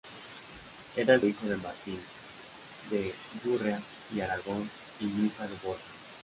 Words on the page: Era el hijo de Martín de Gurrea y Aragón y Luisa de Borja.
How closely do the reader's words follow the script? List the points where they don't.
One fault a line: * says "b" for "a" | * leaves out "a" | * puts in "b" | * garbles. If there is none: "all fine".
all fine